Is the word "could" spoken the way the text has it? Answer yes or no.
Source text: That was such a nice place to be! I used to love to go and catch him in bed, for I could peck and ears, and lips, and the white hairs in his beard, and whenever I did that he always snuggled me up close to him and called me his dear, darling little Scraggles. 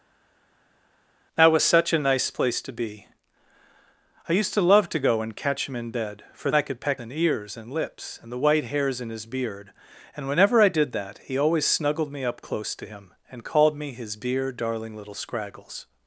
yes